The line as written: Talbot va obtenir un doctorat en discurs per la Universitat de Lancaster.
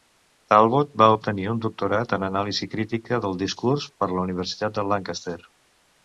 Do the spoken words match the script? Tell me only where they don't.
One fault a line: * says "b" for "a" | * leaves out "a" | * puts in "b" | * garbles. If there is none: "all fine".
* puts in "anàlisi crítica del"